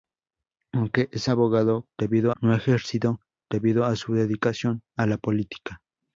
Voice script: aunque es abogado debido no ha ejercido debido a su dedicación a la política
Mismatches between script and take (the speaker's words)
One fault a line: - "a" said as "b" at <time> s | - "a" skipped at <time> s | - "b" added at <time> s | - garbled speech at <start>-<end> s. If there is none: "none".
none